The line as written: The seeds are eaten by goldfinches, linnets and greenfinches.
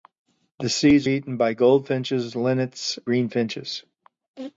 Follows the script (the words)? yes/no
no